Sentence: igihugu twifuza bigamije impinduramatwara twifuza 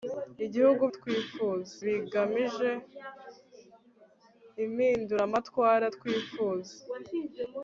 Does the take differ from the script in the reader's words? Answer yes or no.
no